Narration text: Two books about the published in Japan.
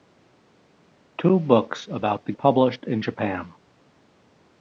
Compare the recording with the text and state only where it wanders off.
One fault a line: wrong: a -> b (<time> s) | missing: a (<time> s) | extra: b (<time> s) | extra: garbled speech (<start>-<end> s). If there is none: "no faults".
no faults